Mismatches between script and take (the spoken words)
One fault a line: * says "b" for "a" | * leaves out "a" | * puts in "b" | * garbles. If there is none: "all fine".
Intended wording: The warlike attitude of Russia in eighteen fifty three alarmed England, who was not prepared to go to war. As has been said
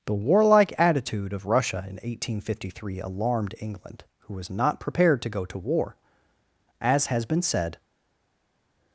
all fine